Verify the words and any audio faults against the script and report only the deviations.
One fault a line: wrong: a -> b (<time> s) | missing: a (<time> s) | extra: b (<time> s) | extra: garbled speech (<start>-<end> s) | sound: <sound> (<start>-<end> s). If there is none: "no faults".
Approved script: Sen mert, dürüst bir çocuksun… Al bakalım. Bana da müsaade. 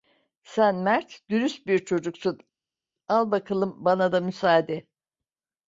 no faults